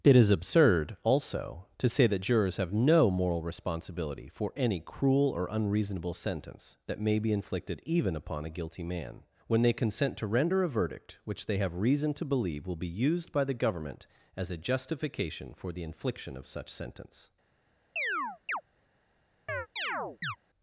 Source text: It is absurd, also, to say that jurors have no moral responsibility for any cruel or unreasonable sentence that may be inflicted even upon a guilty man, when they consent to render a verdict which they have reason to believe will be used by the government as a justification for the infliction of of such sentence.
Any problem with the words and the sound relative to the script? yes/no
yes